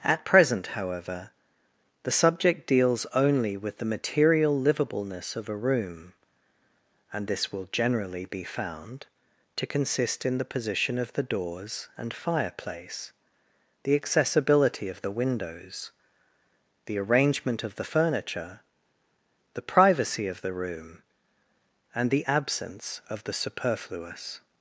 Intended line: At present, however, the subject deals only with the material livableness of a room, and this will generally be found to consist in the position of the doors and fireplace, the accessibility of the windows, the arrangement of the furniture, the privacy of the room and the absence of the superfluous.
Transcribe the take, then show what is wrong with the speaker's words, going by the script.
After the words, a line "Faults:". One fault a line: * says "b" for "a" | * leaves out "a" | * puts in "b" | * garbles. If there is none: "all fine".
At present, however, the subject deals only with the material livableness of a room, and this will generally be found to consist in the position of the doors and fireplace, the accessibility of the windows, the arrangement of the furniture, the privacy of the room and the absence of the superfluous.
Faults:
all fine